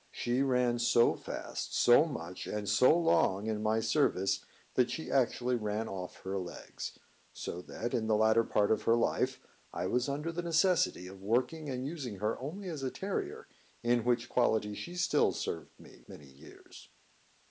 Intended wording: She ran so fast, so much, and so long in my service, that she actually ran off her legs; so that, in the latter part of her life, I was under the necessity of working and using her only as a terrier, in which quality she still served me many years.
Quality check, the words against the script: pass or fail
pass